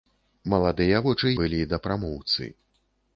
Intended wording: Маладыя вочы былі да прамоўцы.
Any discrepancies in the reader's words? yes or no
no